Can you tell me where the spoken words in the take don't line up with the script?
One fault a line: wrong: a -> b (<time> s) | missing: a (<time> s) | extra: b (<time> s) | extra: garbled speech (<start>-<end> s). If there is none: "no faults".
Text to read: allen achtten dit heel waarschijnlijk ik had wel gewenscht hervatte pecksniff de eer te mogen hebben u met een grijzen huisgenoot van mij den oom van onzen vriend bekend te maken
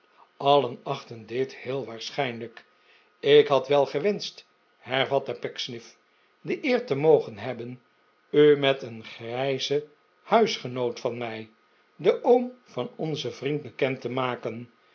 no faults